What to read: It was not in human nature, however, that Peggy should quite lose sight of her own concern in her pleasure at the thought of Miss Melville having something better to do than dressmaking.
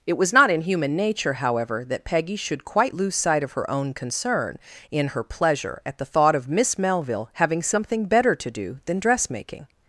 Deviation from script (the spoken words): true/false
false